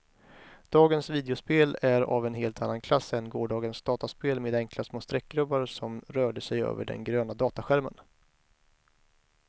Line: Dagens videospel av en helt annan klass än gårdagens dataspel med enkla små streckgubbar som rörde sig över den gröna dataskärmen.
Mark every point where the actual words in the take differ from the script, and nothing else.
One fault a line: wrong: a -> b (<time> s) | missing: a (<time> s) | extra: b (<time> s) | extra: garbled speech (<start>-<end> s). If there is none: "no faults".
extra: är (1.8 s)